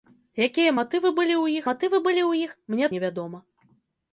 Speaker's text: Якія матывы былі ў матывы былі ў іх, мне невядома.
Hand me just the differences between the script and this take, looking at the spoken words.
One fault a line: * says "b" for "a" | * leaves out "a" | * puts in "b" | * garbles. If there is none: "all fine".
all fine